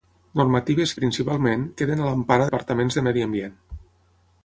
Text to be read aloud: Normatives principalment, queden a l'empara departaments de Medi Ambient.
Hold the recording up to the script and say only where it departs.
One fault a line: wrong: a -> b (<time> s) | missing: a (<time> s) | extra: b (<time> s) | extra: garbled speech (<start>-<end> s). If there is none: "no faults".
no faults